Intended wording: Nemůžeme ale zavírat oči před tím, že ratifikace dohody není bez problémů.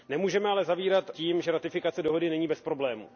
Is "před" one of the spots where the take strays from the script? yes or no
yes